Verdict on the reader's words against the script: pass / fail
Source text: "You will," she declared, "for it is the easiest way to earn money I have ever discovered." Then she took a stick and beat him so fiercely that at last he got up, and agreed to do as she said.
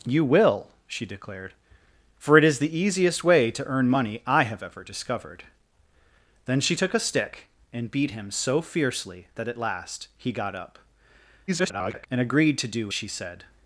fail